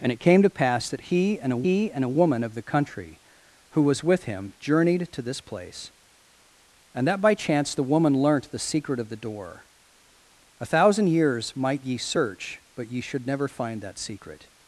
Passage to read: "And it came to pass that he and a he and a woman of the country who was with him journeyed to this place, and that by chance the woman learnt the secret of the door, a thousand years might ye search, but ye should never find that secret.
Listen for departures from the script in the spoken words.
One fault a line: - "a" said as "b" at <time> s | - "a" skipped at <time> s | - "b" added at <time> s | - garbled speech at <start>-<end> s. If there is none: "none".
none